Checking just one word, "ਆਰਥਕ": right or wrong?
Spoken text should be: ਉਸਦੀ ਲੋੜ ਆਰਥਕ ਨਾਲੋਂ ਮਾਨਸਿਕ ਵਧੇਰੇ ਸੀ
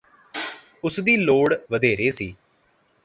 wrong